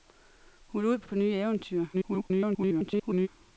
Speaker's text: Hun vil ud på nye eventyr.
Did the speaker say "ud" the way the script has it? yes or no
yes